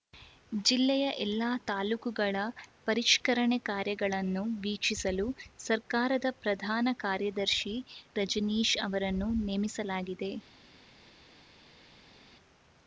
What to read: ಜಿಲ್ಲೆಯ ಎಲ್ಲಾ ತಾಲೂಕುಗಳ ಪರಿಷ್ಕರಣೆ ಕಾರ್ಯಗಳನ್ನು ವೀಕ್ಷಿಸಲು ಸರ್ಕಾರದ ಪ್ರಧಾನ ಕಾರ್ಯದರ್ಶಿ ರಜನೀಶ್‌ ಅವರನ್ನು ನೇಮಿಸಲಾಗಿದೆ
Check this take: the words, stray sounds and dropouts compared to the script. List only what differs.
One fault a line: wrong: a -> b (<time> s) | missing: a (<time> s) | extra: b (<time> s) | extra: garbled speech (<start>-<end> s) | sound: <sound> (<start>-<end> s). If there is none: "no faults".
no faults